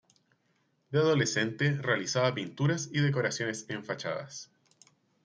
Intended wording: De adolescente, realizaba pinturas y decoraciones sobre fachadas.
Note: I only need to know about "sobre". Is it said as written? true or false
false